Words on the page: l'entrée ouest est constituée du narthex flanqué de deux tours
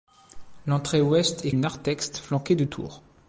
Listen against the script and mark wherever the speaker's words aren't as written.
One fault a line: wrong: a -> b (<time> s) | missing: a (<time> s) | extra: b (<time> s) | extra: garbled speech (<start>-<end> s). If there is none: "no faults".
missing: constituée du (1.5 s)
missing: deux (2.6 s)